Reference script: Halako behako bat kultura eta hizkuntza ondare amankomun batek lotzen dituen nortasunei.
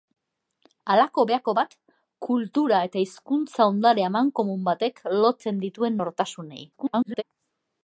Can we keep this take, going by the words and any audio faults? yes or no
no